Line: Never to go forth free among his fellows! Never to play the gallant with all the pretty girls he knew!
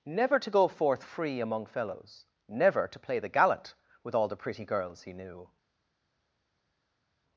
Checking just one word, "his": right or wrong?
wrong